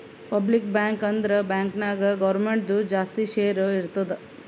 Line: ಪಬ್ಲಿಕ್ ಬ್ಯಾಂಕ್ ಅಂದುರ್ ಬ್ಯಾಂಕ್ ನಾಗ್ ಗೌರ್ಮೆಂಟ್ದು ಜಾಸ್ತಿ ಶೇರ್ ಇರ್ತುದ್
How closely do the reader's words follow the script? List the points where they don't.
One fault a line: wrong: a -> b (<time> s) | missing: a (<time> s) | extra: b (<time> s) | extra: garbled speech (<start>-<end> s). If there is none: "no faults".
no faults